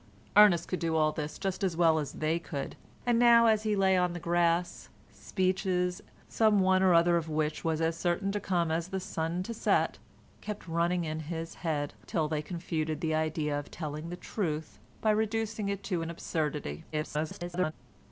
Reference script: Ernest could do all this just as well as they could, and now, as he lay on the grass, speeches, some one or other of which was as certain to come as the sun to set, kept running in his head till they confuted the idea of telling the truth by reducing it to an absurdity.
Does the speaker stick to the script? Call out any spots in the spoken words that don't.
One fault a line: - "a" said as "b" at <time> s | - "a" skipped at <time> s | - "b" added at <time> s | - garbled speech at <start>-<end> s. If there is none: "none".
- garbled speech at 16.9-17.7 s